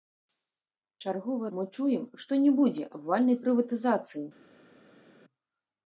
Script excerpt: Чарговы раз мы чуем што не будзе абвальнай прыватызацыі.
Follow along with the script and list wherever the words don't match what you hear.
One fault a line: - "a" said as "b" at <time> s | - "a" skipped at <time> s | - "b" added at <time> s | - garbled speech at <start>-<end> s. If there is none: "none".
- "раз" skipped at 1.5 s